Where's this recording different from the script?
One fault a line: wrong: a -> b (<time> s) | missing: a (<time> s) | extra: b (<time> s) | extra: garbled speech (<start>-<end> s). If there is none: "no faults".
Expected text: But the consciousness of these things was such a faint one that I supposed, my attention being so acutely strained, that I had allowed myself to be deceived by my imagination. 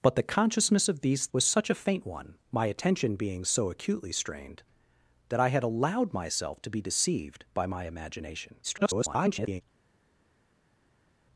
missing: things (1.3 s)
missing: that I supposed (2.4 s)
extra: garbled speech (8.6-9.6 s)